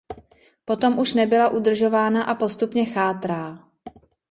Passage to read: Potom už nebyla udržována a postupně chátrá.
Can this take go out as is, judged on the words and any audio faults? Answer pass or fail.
pass